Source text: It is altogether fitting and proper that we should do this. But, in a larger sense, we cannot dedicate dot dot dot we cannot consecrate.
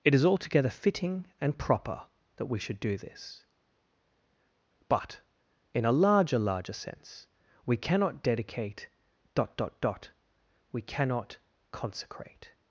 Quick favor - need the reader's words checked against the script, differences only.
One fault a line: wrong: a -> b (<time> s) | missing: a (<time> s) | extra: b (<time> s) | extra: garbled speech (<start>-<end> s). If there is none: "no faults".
extra: larger (6.4 s)